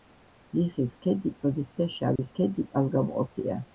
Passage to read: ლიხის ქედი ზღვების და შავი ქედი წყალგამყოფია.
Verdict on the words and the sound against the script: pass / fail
fail